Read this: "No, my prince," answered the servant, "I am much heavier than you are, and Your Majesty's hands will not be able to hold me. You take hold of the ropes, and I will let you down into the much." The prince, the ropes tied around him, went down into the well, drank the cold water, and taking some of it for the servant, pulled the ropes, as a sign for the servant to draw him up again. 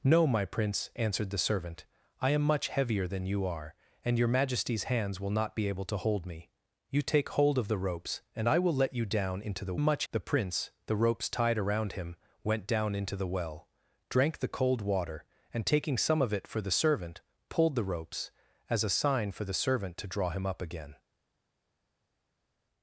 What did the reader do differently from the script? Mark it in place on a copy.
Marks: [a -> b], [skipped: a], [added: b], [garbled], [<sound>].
"No, my prince," answered the servant, "I am much heavier than you are, and Your Majesty's hands will not be able to hold me. You take hold of the ropes, and I will let you down into the much." The prince, the ropes tied around him, went down into the well, drank the cold water, and taking some of it for the servant, pulled the ropes, as a sign for the servant to draw him up again.